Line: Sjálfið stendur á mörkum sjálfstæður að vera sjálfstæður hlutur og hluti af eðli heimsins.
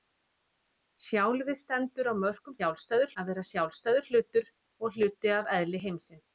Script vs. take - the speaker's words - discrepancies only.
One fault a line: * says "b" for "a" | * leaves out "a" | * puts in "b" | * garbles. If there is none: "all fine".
all fine